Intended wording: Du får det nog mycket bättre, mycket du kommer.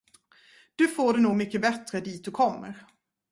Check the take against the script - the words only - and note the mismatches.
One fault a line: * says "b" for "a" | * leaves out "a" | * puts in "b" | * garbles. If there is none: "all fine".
* says "dit" for "mycket"